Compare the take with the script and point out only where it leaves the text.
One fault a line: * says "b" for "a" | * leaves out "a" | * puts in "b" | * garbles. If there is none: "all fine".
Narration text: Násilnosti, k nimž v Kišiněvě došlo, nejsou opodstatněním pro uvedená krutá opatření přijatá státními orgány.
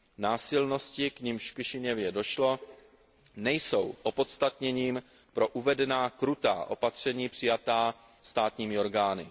all fine